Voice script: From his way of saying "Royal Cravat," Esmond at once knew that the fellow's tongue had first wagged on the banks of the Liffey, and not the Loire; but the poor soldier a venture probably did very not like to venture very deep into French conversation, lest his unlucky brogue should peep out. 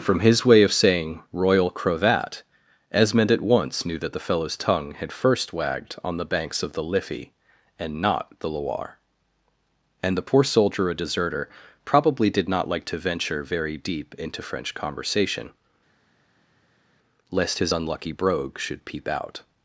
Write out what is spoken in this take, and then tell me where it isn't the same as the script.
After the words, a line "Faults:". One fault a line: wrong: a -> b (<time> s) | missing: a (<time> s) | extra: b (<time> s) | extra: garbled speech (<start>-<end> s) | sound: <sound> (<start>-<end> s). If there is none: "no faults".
From his way of saying "Royal Cravat," Esmond at once knew that the fellow's tongue had first wagged on the banks of the Liffey, and not the Loire; and the poor soldier a deserter probably did not like to venture very deep into French conversation, lest his unlucky brogue should peep out.
Faults:
wrong: but -> and (10.0 s)
wrong: venture -> deserter (10.9 s)
missing: very (12.5 s)